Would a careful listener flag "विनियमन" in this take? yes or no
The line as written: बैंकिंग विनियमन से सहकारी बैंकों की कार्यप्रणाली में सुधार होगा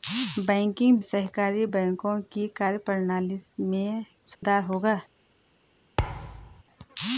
yes